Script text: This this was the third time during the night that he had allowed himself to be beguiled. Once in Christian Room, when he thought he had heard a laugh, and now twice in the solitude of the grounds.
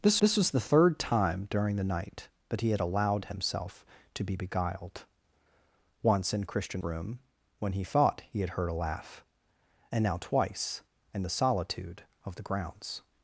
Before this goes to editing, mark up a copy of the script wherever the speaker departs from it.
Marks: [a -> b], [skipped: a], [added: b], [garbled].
This this was the third time during the night that he had allowed himself to be beguiled. Once in Christian Room, when he thought he had heard a laugh, and now twice in the solitude of the grounds.